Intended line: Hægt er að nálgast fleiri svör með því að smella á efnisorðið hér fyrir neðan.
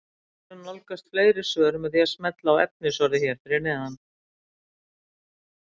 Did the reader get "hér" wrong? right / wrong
right